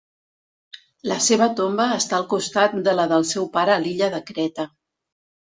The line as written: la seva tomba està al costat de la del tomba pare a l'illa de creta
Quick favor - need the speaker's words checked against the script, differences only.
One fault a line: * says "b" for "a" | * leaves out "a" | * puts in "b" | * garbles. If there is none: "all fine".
* says "seu" for "tomba"